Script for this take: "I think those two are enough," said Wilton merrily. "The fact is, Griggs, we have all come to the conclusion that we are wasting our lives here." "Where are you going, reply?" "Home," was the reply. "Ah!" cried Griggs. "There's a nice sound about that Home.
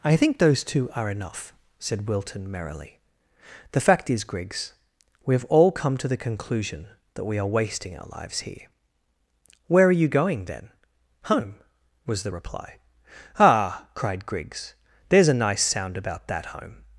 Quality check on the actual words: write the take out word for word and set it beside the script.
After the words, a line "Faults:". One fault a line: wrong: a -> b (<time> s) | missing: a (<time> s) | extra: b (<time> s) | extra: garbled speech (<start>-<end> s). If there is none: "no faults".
"I think those two are enough," said Wilton merrily. "The fact is, Griggs, we have all come to the conclusion that we are wasting our lives here." "Where are you going, then?" "Home," was the reply. "Ah!" cried Griggs. "There's a nice sound about that Home.
Faults:
wrong: reply -> then (10.4 s)